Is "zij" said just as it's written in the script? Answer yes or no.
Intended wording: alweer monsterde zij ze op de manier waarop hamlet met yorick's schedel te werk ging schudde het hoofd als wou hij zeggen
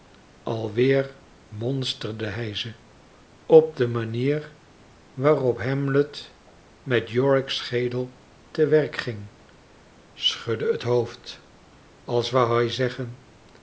no